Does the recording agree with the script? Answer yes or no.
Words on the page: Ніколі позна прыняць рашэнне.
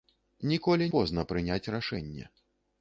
yes